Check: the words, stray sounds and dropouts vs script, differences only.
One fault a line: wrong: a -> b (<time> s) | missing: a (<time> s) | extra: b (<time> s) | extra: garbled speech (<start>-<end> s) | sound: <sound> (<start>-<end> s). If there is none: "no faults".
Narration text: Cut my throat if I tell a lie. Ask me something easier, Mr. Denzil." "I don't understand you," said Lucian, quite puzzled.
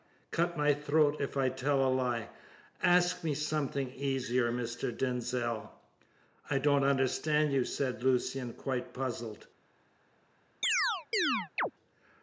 sound: chirp (10.6-11.7 s)